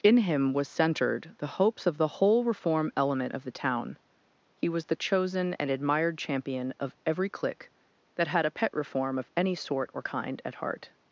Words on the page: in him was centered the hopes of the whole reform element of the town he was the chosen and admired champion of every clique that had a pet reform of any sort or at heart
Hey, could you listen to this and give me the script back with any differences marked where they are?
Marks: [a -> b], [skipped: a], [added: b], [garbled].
in him was centered the hopes of the whole reform element of the town he was the chosen and admired champion of every clique that had a pet reform of any sort or [added: kind] at heart